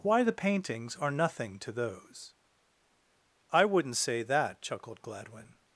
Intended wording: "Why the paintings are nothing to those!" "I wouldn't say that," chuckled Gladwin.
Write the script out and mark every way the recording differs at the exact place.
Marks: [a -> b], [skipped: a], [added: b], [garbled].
"Why the paintings are nothing to those!" "I wouldn't say that," chuckled Gladwin.